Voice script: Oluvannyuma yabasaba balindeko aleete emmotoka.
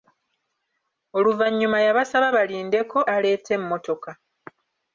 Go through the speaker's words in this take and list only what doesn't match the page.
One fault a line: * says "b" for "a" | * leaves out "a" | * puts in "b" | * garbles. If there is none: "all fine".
all fine